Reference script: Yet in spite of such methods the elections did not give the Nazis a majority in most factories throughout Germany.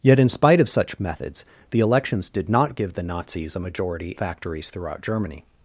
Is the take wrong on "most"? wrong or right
wrong